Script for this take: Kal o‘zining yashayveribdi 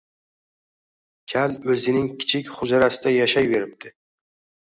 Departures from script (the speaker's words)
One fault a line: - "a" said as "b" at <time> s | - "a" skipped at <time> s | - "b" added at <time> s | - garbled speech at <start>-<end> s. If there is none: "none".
- "kichik hujrasida" added at 2.2 s